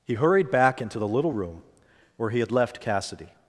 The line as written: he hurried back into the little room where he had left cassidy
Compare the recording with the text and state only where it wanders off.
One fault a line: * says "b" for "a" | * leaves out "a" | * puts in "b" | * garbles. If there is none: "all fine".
all fine